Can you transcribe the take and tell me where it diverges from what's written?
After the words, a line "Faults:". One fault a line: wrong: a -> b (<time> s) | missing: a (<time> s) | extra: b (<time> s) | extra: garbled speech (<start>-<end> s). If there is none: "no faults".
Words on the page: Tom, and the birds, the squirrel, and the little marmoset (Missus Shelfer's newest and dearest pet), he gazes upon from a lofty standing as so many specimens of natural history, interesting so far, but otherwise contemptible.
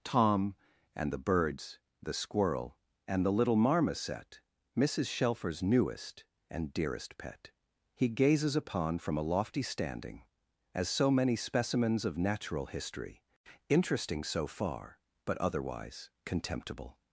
Tom, and the birds, the squirrel, and the little marmoset (Missus Shelfer's newest and dearest pet), he gazes upon from a lofty standing as so many specimens of natural history, interesting so far, but otherwise contemptible.
Faults:
no faults